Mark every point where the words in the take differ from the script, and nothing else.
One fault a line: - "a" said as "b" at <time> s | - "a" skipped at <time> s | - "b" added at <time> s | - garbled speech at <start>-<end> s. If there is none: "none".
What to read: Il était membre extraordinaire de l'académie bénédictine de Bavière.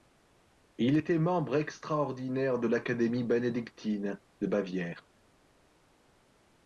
none